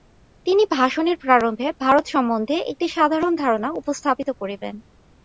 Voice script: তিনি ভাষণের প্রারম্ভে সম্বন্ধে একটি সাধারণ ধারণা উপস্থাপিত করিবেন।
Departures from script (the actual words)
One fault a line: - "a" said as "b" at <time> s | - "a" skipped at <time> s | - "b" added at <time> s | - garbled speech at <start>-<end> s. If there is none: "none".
- "ভারত" added at 1.8 s